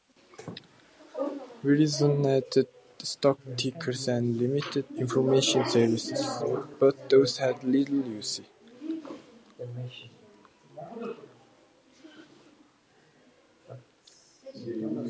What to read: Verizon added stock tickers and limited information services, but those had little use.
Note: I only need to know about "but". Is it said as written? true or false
true